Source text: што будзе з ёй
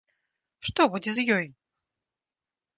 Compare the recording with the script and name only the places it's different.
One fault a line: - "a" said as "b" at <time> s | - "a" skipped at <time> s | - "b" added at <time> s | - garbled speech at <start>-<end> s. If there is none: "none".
none